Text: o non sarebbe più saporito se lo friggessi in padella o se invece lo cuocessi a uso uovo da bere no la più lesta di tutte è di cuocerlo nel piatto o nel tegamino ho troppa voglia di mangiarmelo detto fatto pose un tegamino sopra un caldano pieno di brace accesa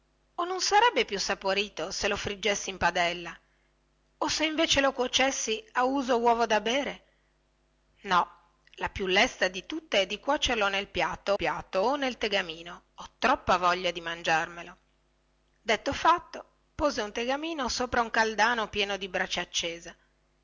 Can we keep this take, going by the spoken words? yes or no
no